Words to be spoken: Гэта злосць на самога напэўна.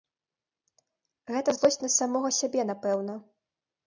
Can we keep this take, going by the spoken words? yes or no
no